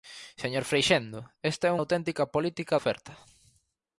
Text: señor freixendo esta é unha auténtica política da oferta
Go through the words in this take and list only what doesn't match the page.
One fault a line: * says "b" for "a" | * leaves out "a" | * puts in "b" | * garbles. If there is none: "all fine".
* leaves out "unha"
* leaves out "da"